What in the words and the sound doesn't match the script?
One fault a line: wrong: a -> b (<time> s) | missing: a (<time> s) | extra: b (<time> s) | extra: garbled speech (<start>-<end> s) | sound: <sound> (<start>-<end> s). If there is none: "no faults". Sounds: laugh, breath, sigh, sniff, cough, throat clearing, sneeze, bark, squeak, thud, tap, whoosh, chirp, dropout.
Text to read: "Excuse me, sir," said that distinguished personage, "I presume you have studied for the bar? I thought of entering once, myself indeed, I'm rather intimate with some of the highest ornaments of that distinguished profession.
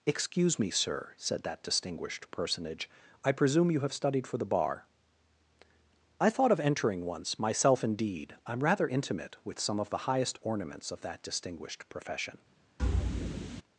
sound: thud (12.8-13.6 s)